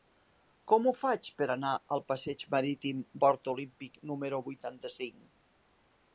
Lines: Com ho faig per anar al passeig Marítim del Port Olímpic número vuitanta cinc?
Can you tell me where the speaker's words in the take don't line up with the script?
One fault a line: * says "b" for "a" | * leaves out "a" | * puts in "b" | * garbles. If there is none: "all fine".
* leaves out "del"